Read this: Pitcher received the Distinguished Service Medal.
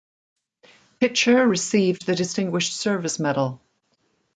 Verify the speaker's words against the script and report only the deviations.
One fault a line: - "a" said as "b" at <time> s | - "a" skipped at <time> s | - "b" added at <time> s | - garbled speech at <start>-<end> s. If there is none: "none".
none